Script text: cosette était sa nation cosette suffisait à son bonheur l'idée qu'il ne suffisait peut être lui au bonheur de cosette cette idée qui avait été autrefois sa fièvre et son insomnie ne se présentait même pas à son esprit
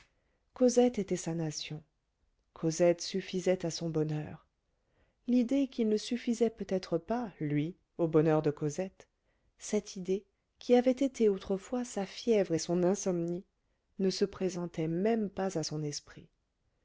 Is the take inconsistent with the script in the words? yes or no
yes